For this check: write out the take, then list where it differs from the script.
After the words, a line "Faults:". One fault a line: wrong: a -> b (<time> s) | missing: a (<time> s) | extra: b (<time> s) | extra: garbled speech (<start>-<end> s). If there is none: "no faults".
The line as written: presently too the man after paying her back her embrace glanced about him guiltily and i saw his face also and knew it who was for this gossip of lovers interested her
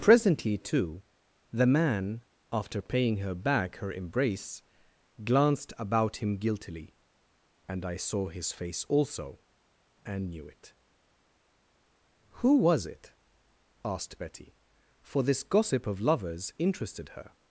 presently too the man after paying her back her embrace glanced about him guiltily and i saw his face also and knew it who was it asked betty for this gossip of lovers interested her
Faults:
extra: it asked betty (12.9 s)